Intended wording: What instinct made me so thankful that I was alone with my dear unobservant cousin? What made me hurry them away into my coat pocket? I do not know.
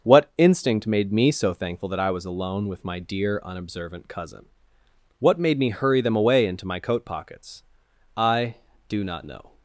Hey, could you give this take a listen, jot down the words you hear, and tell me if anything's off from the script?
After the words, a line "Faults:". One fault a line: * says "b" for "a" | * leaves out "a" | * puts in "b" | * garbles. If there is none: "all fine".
What instinct made me so thankful that I was alone with my dear unobservant cousin? What made me hurry them away into my coat pockets? I do not know.
Faults:
* says "pockets" for "pocket"